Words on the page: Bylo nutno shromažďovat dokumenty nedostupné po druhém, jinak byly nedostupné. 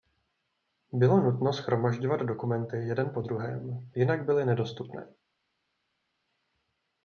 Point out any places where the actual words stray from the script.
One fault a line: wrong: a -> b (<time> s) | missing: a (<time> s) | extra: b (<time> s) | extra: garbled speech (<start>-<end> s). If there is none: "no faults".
wrong: nedostupné -> jeden (2.8 s)